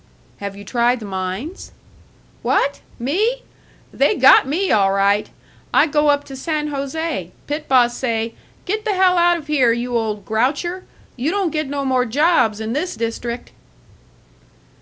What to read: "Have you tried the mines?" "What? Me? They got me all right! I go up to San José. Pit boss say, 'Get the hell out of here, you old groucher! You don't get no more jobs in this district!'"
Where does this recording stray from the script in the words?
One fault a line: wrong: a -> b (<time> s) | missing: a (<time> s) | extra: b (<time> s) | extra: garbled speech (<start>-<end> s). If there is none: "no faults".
no faults